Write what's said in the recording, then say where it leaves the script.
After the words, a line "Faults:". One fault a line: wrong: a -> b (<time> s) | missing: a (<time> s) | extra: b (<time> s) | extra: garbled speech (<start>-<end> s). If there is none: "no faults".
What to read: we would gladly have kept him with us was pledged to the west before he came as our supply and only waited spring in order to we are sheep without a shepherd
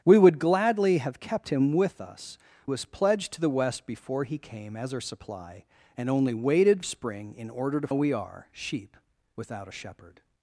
we would gladly have kept him with us was pledged to the west before he came as our supply and only waited spring in order to we are sheep without a shepherd
Faults:
no faults